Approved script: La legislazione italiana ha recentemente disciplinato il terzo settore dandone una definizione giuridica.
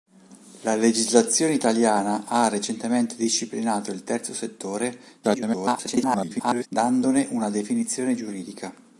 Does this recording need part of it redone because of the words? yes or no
yes